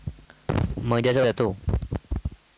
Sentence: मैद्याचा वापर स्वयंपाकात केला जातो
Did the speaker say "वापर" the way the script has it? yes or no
no